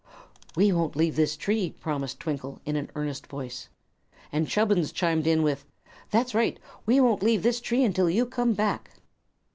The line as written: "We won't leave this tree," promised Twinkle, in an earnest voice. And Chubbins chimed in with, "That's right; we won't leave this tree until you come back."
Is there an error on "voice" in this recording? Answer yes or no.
no